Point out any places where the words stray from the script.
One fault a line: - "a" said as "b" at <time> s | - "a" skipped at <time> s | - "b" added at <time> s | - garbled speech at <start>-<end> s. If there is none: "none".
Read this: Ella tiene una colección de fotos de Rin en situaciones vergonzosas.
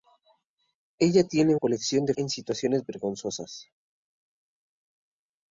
- "una" skipped at 1.6 s
- "fotos de Rin" skipped at 2.1 s